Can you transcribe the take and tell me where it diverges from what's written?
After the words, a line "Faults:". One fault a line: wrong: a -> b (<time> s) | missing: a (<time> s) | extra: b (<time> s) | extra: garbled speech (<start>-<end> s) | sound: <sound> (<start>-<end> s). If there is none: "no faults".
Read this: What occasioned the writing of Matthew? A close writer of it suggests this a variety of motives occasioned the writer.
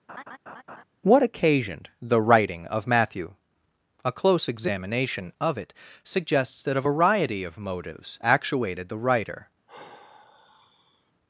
What occasioned the writing of Matthew? A close examination of it suggests that a variety of motives actuated the writer.
Faults:
sound: laugh (0.1-0.8 s)
wrong: writer -> examination (4.5 s)
wrong: this -> that (6.6 s)
wrong: occasioned -> actuated (8.2 s)
sound: sigh (9.7-11.1 s)